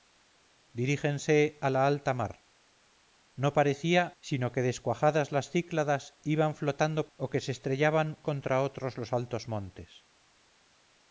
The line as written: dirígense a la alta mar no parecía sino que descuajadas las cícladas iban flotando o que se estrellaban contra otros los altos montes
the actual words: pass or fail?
pass